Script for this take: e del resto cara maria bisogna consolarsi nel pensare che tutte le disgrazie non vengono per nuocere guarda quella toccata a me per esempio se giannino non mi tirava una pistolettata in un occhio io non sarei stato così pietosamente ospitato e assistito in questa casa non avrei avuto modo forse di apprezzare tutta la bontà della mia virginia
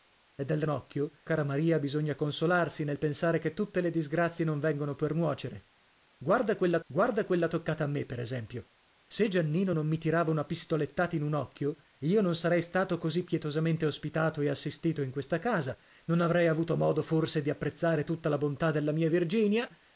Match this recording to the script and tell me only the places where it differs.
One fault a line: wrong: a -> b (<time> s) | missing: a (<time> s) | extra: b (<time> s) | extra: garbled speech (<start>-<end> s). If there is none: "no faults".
wrong: resto -> occhio (0.7 s)
extra: guarda quella (6.9 s)